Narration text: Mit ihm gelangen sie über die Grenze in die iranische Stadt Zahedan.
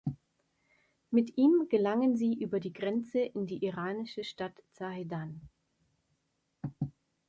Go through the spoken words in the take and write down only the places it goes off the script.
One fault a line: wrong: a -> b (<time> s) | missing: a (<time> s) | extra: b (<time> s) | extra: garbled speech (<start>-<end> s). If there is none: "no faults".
no faults